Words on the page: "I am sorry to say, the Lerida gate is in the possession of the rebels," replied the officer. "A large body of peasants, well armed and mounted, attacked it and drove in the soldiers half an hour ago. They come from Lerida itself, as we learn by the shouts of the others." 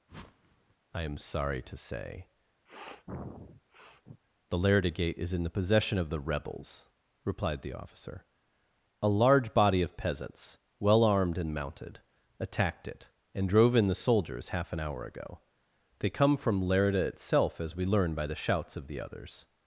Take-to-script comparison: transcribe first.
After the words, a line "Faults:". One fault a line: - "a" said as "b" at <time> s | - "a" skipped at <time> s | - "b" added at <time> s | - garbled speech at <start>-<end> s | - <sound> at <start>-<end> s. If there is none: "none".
"I am sorry to say, the Lerida gate is in the possession of the rebels," replied the officer. "A large body of peasants, well armed and mounted, attacked it and drove in the soldiers half an hour ago. They come from Lerida itself, as we learn by the shouts of the others."
Faults:
- whoosh at 0.1-0.8 s
- sniff at 2.7-4.2 s